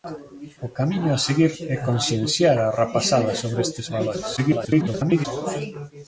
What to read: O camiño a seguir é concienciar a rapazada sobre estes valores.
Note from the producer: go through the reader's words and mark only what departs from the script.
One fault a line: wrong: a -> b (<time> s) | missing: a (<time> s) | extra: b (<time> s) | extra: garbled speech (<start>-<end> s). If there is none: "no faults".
extra: garbled speech (4.4-5.3 s)